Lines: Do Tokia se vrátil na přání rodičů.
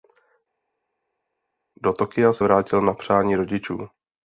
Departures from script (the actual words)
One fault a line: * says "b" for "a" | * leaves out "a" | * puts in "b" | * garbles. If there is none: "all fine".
all fine